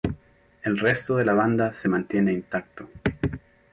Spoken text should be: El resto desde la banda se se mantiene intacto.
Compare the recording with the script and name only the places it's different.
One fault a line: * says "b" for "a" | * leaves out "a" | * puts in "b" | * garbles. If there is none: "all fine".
* says "de" for "desde"
* leaves out "se"